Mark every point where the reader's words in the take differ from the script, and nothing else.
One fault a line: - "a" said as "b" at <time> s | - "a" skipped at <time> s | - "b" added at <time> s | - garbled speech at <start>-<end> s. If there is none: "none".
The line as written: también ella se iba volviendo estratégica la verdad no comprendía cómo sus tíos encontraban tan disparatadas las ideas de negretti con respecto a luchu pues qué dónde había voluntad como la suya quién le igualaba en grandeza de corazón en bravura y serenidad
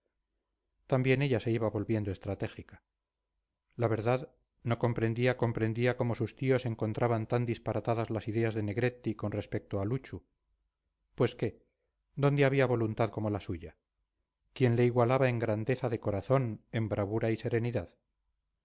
- "comprendía" added at 5.4 s